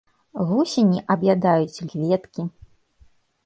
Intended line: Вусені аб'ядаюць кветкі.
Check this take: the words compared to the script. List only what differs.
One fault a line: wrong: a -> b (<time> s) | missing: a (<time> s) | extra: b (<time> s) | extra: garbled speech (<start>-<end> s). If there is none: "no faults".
no faults